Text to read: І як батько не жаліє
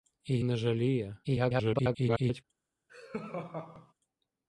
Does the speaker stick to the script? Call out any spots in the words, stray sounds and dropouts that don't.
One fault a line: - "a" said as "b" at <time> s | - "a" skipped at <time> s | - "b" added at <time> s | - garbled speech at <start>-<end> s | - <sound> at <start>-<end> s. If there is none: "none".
- "як батько" skipped at 0.4 s
- garbled speech at 1.2-2.4 s
- laugh at 2.9-3.9 s